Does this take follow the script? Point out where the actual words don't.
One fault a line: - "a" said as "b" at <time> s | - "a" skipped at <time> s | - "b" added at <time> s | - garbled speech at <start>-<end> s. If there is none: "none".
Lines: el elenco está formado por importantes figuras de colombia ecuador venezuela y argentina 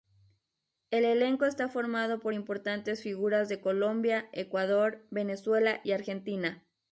none